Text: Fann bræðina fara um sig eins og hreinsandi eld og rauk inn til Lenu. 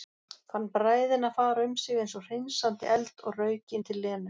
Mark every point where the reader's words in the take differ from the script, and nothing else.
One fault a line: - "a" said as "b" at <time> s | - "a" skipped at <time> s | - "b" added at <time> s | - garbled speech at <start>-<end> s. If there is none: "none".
none